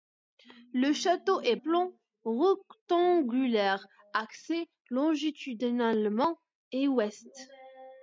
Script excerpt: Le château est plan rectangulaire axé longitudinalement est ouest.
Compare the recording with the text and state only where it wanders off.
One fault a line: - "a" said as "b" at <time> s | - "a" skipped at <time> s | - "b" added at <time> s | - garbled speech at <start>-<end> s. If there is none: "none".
none